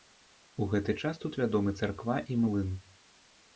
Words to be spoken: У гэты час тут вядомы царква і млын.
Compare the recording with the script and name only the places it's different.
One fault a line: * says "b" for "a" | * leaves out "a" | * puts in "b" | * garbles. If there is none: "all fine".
all fine